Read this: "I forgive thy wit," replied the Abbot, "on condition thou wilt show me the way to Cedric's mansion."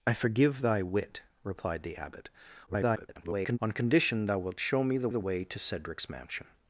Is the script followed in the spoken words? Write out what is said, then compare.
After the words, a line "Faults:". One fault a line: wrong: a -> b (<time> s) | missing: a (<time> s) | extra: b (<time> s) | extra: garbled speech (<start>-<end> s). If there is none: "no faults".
"I forgive thy wit," replied the Abbot, [garbled] "on condition thou wilt show me the the way to Cedric's mansion."
Faults:
extra: garbled speech (2.7-3.6 s)
extra: the (5.1 s)